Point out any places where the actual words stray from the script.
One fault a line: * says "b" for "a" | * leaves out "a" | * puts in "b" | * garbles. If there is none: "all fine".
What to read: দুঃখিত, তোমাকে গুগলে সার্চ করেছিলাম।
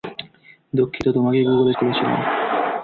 * leaves out "সার্চ"